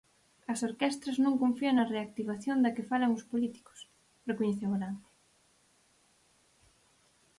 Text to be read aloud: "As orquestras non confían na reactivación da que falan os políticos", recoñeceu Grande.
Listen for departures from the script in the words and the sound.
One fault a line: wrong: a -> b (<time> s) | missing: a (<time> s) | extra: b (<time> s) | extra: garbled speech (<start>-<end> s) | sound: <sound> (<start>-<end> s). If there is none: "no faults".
no faults